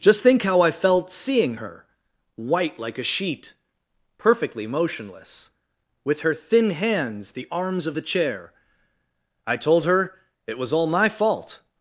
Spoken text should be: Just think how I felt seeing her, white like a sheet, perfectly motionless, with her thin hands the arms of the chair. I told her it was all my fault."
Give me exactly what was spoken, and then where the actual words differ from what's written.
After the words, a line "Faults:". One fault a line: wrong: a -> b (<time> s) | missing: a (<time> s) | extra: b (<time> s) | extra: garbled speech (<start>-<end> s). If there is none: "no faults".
Just think how I felt seeing her, white like a sheet, perfectly motionless, with her thin hands the arms of the chair. I told her it was all my fault."
Faults:
no faults